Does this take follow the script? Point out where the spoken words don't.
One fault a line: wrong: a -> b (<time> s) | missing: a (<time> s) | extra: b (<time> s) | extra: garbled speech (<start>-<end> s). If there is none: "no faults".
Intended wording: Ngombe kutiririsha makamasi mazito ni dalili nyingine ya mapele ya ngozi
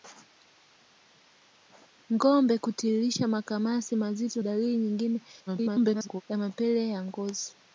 missing: ni (4.4 s)
extra: garbled speech (5.5-6.2 s)